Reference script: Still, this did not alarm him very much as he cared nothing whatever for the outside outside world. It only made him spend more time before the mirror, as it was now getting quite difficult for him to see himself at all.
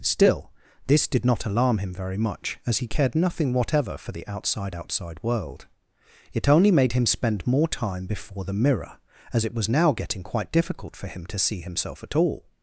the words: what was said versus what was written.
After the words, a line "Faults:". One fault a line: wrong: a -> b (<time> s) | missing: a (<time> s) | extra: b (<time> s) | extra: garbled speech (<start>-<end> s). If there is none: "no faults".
Still, this did not alarm him very much as he cared nothing whatever for the outside outside world. It only made him spend more time before the mirror, as it was now getting quite difficult for him to see himself at all.
Faults:
no faults